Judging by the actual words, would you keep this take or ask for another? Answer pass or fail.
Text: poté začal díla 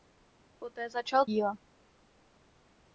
pass